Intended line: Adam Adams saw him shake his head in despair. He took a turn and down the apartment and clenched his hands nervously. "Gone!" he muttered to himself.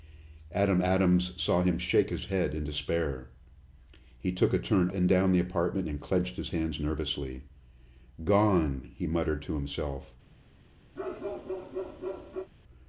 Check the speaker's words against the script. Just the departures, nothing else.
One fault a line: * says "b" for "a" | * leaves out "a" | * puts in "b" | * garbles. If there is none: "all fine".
all fine